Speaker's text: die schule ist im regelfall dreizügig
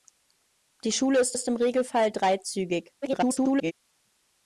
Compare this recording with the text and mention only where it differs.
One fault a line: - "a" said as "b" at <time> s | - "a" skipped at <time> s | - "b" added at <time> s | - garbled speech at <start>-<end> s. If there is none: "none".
- "ist" added at 1.3 s
- garbled speech at 3.0-3.7 s